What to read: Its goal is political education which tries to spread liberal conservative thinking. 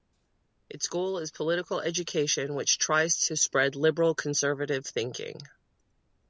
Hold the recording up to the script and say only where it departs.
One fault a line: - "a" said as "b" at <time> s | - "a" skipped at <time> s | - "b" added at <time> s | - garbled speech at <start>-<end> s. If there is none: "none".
none